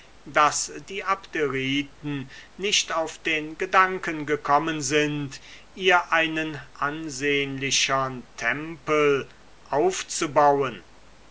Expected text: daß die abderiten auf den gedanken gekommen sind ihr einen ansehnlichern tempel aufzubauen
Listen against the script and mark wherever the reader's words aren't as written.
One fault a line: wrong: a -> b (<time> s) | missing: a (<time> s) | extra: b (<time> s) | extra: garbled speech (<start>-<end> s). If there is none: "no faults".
extra: nicht (2.5 s)